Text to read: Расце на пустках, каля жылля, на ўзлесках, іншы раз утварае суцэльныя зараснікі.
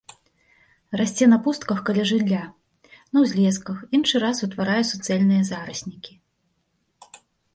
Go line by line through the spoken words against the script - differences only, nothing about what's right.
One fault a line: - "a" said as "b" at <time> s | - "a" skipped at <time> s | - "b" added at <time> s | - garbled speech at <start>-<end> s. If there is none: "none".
none